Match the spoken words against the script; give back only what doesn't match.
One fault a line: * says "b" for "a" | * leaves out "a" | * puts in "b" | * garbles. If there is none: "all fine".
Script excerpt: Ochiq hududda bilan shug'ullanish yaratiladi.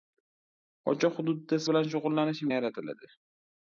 all fine